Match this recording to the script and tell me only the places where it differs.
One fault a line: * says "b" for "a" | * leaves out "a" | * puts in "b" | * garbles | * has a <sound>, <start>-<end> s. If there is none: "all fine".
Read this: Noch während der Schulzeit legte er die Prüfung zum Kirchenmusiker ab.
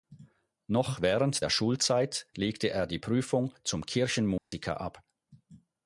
* has a dropout, 4.4-4.5 s